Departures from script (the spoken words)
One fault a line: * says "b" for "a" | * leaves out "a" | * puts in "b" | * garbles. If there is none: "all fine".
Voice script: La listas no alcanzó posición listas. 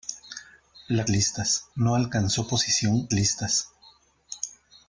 all fine